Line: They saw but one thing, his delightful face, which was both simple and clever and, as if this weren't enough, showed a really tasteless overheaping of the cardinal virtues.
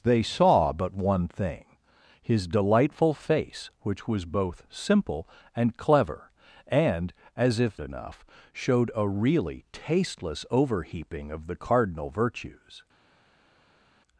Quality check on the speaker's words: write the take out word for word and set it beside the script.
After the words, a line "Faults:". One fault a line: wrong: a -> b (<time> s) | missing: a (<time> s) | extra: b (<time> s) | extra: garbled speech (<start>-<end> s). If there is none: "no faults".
They saw but one thing, his delightful face, which was both simple and clever and, as if enough, showed a really tasteless overheaping of the cardinal virtues.
Faults:
missing: this weren't (7.8 s)